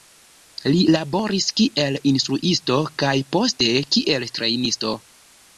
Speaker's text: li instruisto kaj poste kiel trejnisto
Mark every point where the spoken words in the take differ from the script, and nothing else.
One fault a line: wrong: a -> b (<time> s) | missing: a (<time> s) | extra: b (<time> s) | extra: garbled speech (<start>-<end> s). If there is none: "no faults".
extra: laboris kiel (0.9 s)